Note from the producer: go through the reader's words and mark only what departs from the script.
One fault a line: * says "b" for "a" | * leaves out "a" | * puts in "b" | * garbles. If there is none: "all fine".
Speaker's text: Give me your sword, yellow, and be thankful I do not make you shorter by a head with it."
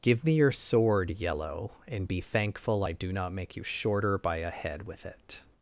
all fine